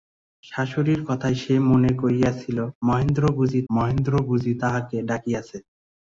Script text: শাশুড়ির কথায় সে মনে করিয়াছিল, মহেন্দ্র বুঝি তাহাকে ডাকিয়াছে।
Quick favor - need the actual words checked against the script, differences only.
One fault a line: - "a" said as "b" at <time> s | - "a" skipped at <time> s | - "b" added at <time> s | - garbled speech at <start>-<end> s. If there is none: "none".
- "মহেন্দ্র বুঝি" added at 3.7 s